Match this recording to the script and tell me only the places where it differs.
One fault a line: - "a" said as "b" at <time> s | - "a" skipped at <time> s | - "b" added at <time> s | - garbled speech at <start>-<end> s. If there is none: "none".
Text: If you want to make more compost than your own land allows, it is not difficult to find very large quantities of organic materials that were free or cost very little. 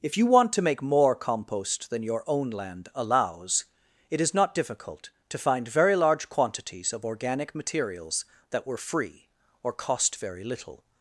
none